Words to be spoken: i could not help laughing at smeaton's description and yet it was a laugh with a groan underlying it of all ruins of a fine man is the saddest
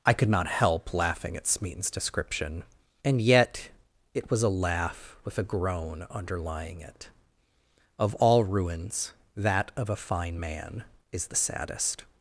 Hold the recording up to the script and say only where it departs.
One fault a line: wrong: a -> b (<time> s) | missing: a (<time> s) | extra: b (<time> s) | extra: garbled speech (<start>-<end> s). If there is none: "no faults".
extra: that (9.3 s)